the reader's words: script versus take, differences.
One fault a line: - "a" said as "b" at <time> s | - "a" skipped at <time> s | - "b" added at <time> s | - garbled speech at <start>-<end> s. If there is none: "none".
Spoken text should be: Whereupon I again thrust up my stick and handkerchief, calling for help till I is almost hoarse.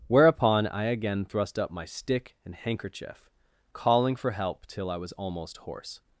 - "is" said as "was" at 5.0 s